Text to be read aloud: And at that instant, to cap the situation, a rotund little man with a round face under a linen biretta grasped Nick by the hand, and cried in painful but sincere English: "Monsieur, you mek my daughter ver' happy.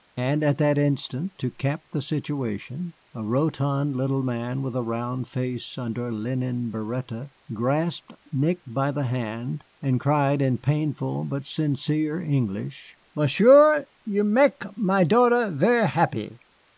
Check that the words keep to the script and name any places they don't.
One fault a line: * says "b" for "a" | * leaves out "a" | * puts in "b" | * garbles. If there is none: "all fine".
all fine